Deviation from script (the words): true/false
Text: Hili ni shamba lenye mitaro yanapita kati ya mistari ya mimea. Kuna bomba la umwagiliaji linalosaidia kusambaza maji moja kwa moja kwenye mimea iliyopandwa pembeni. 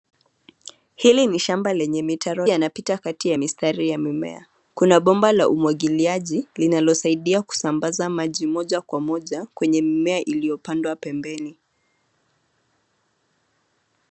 false